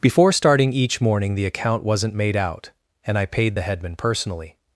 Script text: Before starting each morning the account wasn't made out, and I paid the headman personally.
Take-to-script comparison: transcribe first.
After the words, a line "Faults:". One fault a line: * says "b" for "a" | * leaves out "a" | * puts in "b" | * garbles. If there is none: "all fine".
Before starting each morning the account wasn't made out, and I paid the headman personally.
Faults:
all fine